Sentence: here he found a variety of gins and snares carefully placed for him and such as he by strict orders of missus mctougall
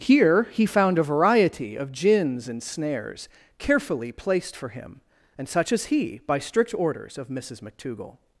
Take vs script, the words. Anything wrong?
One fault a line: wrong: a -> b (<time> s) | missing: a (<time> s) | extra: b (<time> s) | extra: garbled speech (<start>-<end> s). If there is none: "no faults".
no faults